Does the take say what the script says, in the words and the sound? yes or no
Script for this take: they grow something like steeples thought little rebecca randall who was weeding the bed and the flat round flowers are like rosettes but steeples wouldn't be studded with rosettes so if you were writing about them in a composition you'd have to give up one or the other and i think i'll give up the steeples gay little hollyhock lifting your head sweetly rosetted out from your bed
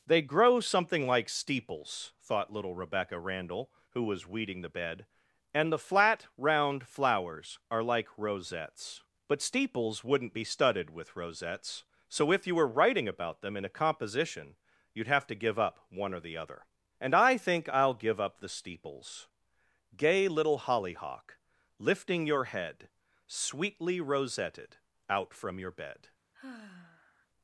no